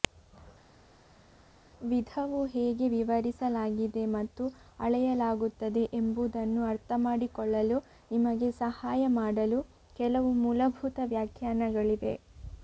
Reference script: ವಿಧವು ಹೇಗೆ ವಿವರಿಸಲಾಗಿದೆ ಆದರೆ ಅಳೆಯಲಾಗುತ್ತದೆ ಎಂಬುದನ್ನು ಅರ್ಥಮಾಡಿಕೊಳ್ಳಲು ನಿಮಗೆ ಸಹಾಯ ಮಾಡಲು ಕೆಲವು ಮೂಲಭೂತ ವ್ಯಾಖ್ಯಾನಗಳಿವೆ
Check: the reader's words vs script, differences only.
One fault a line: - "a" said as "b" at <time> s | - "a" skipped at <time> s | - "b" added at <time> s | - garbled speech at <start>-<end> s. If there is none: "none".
- "ಆದರೆ" said as "ಮತ್ತು" at 4.1 s